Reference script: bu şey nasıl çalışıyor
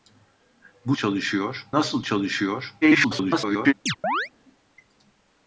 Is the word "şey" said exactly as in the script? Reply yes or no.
no